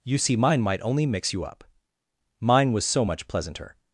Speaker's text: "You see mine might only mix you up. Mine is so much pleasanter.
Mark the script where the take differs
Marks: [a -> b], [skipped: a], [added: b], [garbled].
"You see mine might only mix you up. Mine [is -> was] so much pleasanter.